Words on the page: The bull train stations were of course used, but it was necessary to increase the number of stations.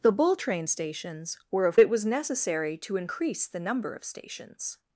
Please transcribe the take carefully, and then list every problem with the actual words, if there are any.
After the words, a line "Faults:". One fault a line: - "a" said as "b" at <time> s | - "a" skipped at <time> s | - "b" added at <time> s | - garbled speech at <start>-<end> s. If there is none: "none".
The bull train stations were of it was necessary to increase the number of stations.
Faults:
- "course used but" skipped at 1.8 s